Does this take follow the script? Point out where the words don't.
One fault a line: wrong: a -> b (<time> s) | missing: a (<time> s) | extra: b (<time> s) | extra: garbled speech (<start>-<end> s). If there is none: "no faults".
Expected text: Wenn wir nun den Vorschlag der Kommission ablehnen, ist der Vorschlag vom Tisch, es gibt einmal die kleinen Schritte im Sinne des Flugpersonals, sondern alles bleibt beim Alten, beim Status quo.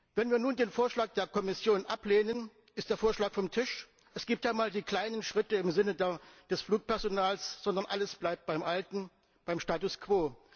no faults